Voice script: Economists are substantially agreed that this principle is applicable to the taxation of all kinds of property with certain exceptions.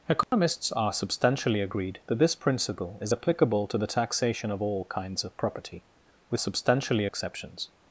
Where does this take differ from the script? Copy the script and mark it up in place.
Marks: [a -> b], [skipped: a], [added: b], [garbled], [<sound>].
Economists [dropout] are substantially agreed that this principle is applicable to the taxation of all kinds of property with [certain -> substantially] exceptions.